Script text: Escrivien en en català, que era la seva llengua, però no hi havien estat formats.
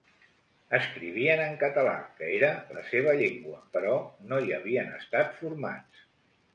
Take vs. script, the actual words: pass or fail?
fail